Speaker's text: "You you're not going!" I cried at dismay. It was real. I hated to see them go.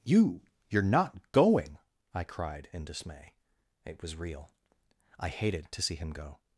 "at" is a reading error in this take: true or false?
true